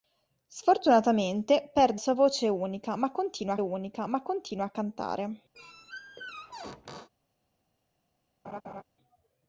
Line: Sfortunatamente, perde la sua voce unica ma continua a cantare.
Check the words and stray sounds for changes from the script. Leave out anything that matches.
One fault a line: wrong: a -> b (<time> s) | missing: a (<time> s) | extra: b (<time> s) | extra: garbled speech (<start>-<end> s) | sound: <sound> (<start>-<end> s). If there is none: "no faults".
missing: la (2.0 s)
extra: unica ma continua (3.6 s)
sound: squeak (5.5-7.1 s)
sound: laugh (8.4-8.8 s)